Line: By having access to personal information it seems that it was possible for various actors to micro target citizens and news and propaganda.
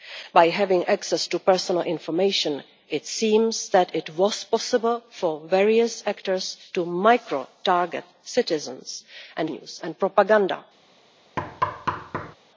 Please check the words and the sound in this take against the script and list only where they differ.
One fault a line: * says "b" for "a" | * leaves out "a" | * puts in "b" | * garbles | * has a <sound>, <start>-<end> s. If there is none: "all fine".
* has a thud, 11.4-12.4 s